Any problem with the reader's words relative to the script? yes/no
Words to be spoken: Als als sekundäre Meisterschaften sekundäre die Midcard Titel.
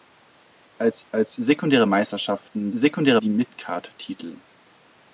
no